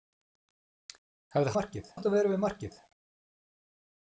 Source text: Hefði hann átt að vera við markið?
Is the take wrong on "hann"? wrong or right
wrong